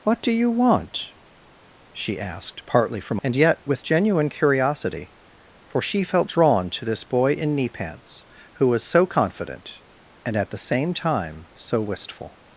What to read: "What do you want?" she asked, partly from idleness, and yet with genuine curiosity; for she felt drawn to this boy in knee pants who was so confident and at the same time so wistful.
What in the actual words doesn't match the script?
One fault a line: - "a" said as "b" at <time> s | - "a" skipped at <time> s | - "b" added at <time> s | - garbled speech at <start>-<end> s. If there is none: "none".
- "idleness" skipped at 3.2 s